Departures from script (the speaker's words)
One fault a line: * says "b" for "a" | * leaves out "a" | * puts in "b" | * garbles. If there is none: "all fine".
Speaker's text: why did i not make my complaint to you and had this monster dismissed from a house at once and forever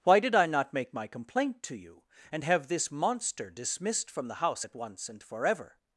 * says "have" for "had"
* says "the" for "a"